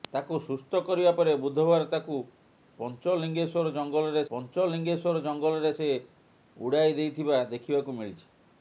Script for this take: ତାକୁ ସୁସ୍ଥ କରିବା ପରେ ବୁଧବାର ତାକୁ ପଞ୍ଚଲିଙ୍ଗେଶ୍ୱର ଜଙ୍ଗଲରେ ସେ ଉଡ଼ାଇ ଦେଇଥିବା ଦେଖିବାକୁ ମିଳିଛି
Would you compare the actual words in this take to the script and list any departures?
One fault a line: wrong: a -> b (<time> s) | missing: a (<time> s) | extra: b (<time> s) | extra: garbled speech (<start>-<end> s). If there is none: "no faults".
extra: ପଞ୍ଚଲିଙ୍ଗେଶ୍ୱର ଜଙ୍ଗଲରେ (4.3 s)